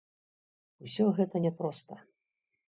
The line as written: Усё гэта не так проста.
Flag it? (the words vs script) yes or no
yes